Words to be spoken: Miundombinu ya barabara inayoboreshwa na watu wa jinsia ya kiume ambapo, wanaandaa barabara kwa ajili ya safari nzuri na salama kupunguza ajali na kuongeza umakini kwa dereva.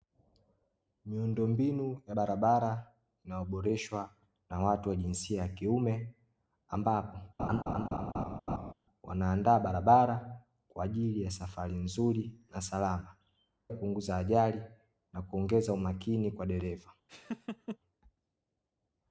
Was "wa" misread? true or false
false